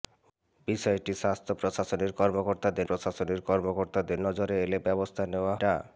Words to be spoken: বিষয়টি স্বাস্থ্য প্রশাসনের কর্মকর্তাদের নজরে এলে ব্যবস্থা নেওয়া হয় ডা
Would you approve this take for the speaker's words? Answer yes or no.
no